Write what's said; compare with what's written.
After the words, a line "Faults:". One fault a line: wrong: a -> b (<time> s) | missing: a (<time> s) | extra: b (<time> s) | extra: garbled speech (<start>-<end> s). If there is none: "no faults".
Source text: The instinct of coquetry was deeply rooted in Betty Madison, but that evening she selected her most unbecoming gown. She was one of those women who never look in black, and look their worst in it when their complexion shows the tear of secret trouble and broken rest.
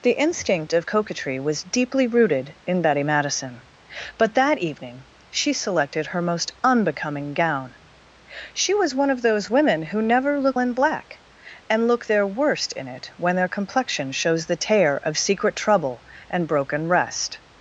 The instinct of coquetry was deeply rooted in Betty Madison, but that evening she selected her most unbecoming gown. She was one of those women who never look in black, and look their worst in it when their complexion shows the tear of secret trouble and broken rest.
Faults:
no faults